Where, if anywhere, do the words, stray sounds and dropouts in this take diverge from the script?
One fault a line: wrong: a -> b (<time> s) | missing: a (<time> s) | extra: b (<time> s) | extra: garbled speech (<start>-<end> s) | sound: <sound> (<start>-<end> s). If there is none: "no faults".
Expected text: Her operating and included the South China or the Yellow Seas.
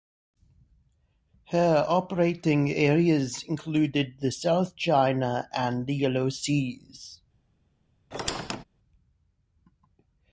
wrong: and -> areas (2.7 s)
wrong: or -> and (5.5 s)
sound: squeak (8.1-8.6 s)